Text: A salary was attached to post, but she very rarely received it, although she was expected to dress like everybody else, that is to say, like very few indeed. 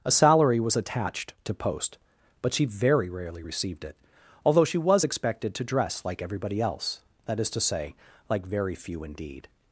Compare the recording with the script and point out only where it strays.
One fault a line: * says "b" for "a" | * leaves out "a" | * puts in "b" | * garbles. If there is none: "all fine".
all fine